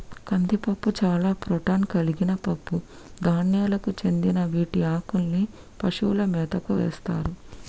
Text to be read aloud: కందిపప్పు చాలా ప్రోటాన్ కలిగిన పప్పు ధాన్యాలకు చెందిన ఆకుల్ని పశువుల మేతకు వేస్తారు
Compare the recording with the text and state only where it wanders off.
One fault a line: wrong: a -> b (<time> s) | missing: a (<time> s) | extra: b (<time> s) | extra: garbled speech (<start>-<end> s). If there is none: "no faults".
extra: వీటి (4.4 s)